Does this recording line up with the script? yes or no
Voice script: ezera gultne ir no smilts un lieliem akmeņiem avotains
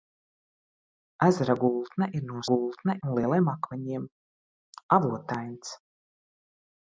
no